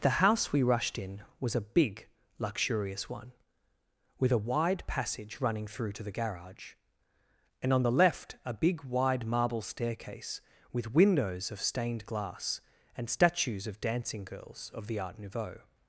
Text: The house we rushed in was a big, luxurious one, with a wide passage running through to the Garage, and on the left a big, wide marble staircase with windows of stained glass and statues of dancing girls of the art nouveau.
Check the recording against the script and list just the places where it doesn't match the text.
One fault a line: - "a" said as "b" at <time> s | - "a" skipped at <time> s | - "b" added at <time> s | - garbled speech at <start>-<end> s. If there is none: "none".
none